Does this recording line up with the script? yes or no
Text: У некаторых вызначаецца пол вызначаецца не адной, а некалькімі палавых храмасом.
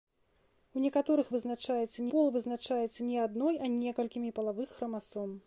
yes